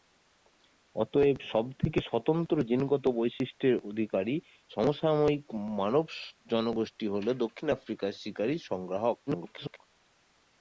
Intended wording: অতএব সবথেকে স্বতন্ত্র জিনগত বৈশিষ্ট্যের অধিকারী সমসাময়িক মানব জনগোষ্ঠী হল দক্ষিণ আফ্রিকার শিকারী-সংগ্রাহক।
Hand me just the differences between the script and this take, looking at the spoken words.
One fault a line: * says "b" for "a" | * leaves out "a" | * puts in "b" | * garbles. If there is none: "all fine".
* garbles